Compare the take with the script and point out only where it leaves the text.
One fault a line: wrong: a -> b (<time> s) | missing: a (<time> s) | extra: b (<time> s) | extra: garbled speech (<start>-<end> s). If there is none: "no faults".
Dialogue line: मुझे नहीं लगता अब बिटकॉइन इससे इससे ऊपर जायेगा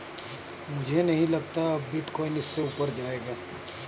missing: इससे (2.6 s)